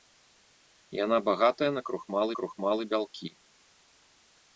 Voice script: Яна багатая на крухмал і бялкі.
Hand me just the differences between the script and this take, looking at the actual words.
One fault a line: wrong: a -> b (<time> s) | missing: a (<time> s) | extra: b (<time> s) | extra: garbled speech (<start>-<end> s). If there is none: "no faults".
extra: крухмал (2.4 s)